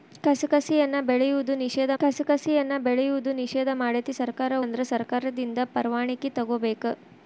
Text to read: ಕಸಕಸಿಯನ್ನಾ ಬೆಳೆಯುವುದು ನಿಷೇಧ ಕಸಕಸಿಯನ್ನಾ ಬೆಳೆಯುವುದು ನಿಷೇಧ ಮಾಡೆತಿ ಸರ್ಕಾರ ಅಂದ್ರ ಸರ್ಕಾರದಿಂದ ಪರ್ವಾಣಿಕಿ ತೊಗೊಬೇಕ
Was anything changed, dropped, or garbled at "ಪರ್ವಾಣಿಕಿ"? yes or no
no